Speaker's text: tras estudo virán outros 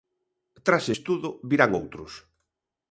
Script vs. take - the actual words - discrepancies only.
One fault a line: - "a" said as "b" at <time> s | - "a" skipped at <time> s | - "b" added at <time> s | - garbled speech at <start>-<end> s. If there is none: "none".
none